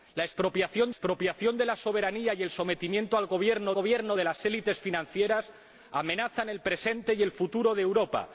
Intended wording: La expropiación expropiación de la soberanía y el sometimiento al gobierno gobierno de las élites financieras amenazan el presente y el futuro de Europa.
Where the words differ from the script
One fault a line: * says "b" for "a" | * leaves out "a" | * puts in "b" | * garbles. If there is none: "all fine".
all fine